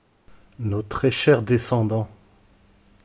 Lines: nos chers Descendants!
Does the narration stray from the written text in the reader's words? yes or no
yes